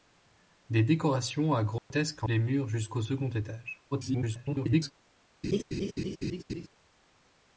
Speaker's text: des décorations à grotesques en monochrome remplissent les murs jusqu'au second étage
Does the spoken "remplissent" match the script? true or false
false